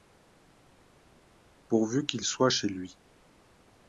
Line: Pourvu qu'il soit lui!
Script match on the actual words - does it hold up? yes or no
no